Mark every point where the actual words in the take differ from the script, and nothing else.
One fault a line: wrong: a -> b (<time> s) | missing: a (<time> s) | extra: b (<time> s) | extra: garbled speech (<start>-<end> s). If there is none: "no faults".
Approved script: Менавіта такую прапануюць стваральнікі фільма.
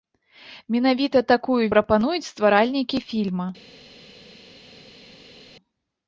no faults